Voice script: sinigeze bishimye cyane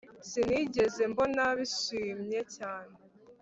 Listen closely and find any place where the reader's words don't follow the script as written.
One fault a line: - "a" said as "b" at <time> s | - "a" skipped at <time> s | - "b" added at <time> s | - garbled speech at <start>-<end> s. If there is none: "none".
- "mbona" added at 1.1 s